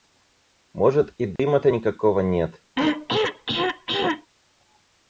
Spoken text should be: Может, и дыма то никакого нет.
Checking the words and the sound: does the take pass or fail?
fail